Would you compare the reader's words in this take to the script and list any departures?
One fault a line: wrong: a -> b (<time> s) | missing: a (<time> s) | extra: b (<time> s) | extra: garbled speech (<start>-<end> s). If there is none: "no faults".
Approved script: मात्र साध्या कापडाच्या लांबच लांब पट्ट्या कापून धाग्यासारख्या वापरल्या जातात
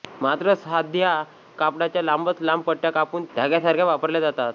no faults